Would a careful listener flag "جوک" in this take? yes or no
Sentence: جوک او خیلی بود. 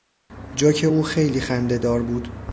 no